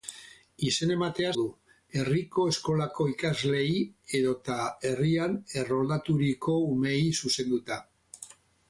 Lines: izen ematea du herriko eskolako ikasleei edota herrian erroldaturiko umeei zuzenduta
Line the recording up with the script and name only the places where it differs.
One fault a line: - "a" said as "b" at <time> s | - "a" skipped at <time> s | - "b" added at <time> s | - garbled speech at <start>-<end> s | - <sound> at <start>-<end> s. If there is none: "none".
none